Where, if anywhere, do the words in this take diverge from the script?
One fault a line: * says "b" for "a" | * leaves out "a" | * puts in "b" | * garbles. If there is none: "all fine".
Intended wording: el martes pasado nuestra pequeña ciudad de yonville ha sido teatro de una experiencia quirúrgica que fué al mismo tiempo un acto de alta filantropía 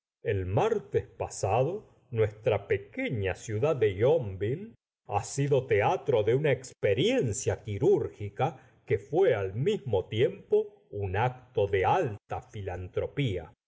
all fine